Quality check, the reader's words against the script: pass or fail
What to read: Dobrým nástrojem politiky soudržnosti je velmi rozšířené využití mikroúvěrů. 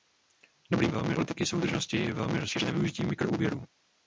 fail